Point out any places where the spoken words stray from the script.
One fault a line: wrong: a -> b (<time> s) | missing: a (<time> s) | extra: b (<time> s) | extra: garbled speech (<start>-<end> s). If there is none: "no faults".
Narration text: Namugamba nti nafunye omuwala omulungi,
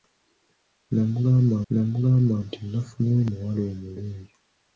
extra: namugamba (1.7 s)